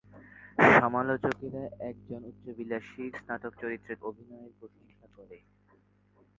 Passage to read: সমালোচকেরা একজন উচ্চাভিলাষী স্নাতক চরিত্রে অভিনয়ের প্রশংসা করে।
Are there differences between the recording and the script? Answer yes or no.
no